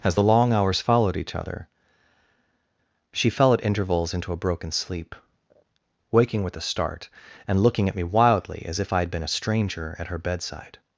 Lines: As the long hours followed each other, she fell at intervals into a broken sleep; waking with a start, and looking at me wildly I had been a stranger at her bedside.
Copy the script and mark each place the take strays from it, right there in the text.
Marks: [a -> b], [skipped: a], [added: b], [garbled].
As the long hours followed each other, she fell at intervals into a broken sleep; waking with a start, and looking at me wildly [added: as if] I had been a stranger at her bedside.